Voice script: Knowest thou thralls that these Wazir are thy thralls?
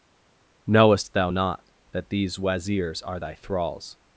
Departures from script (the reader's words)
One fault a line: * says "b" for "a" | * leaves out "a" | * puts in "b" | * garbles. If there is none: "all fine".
* says "not" for "thralls"
* says "Wazirs" for "Wazir"